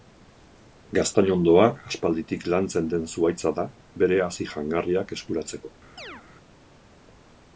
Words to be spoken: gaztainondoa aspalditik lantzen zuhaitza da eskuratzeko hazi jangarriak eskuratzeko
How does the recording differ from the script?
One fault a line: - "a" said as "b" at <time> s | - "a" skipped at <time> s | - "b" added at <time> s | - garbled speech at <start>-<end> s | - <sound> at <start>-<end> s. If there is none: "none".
- "den" added at 2.9 s
- "eskuratzeko" said as "bere" at 4.0 s
- chirp at 6.0-6.2 s